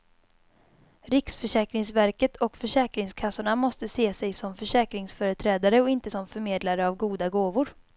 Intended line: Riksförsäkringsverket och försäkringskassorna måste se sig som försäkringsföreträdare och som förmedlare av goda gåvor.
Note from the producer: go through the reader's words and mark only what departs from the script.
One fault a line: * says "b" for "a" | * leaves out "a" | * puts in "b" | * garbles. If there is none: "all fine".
* puts in "inte"